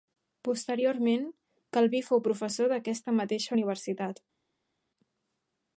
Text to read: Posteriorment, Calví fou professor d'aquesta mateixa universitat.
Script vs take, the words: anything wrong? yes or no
no